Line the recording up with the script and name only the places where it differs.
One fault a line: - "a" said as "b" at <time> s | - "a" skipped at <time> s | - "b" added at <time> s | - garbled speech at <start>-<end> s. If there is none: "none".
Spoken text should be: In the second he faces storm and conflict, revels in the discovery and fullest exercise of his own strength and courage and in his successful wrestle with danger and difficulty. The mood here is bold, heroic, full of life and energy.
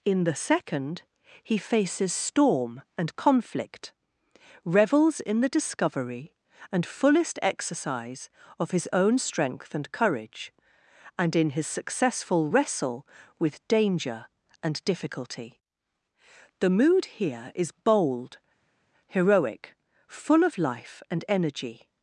none